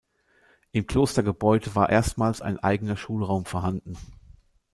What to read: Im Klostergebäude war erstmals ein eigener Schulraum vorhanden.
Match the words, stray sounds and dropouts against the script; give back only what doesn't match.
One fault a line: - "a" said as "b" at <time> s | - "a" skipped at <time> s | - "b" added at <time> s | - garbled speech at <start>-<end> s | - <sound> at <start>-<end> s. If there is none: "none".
none